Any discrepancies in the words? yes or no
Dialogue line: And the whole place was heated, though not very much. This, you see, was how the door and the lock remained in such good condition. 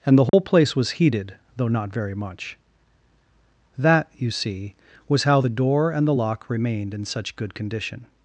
yes